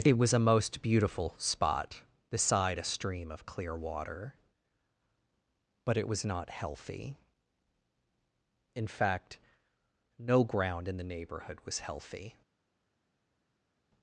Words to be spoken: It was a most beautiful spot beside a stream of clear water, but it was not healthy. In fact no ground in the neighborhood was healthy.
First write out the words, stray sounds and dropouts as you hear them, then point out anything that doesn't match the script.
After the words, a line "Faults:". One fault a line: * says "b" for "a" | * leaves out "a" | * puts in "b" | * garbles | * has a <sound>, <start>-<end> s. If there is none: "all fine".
It was a most beautiful spot beside a stream of clear water, but it was not healthy. In fact no ground in the neighborhood was healthy.
Faults:
all fine